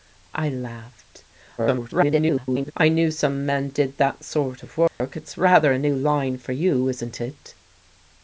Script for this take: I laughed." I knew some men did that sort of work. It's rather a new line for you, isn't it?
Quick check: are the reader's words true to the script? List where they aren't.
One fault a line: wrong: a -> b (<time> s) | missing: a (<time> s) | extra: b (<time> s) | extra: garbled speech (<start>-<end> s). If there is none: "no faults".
extra: garbled speech (1.6-2.7 s)